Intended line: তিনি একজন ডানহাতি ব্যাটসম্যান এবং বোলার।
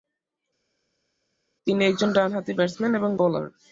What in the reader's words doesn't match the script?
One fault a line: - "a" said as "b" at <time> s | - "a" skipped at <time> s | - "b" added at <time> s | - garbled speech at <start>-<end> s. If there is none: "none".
none